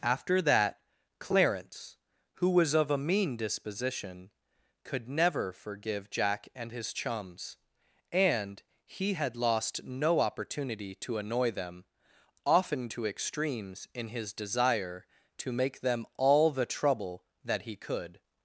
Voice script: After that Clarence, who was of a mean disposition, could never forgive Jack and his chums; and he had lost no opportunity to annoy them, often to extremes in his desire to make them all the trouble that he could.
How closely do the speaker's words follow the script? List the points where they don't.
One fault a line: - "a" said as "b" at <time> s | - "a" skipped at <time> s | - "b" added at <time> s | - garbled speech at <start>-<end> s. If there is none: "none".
none